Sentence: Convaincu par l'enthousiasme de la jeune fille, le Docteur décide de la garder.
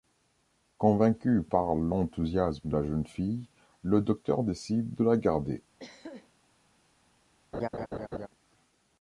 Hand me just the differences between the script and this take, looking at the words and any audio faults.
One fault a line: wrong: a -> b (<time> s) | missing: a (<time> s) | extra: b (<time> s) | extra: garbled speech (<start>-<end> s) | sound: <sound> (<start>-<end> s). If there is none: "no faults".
sound: throat clearing (5.8-6.3 s)
sound: laugh (7.5-8.3 s)